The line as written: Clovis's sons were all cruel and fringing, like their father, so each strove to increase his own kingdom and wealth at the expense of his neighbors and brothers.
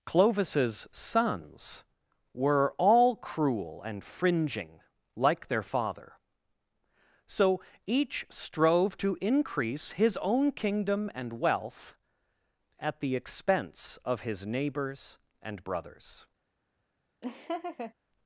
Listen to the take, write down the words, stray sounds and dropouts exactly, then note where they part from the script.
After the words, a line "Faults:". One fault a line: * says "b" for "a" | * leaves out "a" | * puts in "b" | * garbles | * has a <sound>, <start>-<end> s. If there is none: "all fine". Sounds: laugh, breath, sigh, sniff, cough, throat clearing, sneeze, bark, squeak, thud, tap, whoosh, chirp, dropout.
Clovis's sons were all cruel and fringing, like their father, so each strove to increase his own kingdom and wealth at the expense of his neighbors and brothers.
Faults:
* has a laugh, 17.2-17.9 s